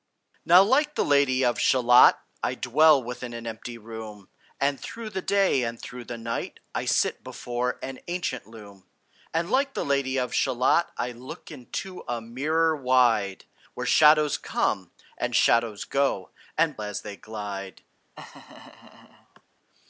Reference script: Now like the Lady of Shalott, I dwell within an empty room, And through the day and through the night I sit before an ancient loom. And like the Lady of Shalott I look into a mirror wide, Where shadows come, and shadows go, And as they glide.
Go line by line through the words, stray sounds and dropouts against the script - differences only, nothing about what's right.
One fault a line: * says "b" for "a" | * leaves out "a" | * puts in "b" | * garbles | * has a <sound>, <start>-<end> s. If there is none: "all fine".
* has a laugh, 18.2-19.4 s